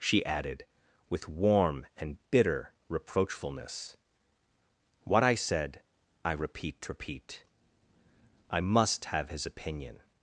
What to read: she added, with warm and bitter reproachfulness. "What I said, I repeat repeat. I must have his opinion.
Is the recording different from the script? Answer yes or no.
no